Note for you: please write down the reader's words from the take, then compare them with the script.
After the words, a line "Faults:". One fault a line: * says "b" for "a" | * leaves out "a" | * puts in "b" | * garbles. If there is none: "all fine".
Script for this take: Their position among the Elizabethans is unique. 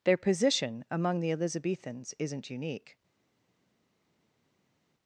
Their position among the Elizabethans isn't unique.
Faults:
* says "isn't" for "is"